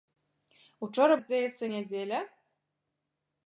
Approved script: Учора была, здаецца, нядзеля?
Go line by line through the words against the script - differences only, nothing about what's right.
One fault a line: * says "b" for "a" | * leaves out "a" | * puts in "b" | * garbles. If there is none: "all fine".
* leaves out "была"